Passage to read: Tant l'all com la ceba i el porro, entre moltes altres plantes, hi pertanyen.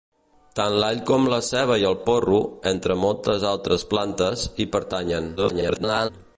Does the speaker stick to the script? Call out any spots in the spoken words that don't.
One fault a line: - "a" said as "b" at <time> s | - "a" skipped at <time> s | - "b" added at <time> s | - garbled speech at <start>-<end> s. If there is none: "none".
- garbled speech at 5.4-6.1 s